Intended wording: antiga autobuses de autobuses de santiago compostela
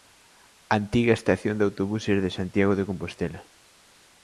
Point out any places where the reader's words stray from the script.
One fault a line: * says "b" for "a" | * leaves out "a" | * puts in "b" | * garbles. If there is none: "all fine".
* says "estación" for "autobuses"
* puts in "de"